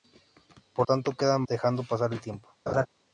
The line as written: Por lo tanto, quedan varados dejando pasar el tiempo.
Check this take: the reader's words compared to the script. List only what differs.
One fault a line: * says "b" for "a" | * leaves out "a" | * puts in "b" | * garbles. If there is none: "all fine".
* leaves out "lo"
* leaves out "varados"